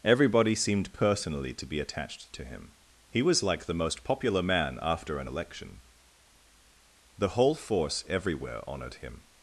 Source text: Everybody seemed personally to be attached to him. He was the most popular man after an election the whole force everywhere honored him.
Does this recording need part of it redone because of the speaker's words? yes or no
yes